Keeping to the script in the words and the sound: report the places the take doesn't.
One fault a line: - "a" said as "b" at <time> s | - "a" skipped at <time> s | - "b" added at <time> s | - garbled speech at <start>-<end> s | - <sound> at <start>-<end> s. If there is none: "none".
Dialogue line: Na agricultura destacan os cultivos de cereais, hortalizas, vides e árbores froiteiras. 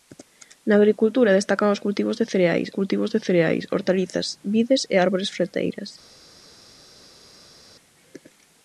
- "cultivos de cereais" added at 2.8 s